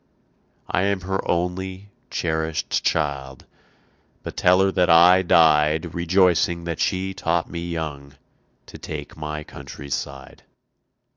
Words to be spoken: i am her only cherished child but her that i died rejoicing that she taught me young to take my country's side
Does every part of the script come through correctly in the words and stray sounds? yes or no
no